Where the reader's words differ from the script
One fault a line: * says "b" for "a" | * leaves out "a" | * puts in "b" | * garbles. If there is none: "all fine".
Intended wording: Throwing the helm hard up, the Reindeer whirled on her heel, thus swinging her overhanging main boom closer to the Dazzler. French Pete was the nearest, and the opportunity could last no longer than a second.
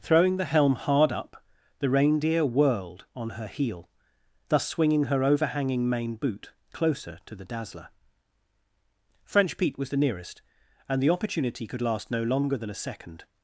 * says "boot" for "boom"